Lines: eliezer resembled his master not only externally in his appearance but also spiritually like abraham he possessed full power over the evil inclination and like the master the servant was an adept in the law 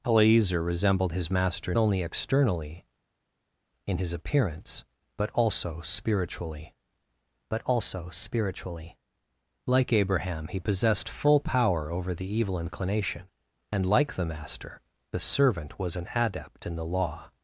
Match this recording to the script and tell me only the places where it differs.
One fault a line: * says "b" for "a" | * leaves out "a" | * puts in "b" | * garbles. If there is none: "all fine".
* leaves out "not"
* puts in "but also spiritually"